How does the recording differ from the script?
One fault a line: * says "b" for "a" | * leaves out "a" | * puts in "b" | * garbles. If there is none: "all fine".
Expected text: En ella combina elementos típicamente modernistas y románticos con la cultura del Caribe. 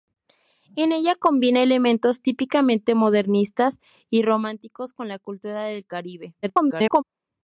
* garbles